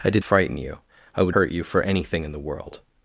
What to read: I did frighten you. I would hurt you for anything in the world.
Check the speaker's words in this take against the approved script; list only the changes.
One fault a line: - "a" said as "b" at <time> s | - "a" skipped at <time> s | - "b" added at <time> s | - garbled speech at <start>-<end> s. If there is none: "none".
none